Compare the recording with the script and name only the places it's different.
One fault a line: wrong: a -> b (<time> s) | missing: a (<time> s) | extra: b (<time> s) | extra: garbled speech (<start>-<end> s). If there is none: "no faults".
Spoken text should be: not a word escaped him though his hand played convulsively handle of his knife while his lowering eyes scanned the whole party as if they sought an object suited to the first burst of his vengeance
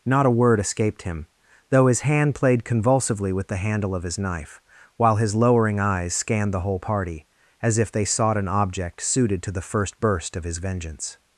extra: with the (3.3 s)